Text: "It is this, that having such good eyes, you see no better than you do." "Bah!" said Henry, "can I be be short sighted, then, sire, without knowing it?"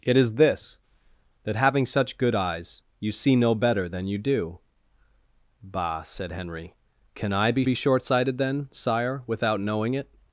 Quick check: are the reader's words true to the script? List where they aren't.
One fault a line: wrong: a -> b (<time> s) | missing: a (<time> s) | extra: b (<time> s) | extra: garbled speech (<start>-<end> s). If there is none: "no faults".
no faults